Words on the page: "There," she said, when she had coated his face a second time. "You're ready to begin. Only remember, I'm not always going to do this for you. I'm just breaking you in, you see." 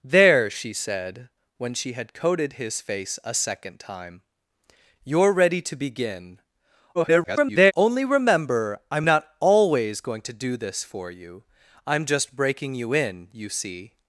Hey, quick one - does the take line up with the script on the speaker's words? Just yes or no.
no